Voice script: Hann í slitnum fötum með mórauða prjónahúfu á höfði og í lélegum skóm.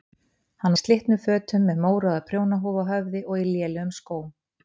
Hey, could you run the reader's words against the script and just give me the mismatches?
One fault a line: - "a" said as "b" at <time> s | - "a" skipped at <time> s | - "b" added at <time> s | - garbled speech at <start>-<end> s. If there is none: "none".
none